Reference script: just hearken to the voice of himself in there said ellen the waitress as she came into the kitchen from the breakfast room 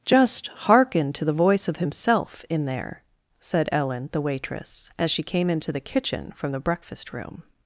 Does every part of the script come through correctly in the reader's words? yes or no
yes